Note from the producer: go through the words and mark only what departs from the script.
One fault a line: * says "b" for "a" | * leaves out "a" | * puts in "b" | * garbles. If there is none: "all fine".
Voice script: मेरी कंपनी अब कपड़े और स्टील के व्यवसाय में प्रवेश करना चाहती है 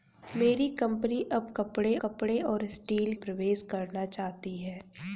* puts in "कपड़े"
* leaves out "के व्यवसाय में"